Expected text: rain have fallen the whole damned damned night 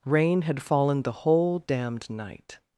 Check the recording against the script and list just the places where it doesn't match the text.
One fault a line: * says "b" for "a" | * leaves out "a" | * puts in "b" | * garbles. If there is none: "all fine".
* says "had" for "have"
* leaves out "damned"